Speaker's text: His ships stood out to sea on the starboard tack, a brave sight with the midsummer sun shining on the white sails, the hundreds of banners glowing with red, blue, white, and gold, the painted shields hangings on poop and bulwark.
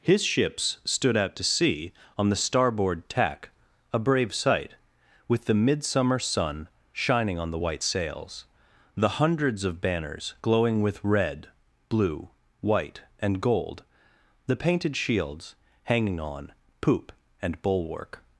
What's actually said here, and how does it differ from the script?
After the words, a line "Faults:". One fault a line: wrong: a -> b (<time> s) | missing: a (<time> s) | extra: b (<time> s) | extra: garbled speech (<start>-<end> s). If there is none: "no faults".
His ships stood out to sea on the starboard tack, a brave sight with the midsummer sun shining on the white sails, the hundreds of banners glowing with red, blue, white, and gold, the painted shields hanging on poop and bulwark.
Faults:
wrong: hangings -> hanging (15.8 s)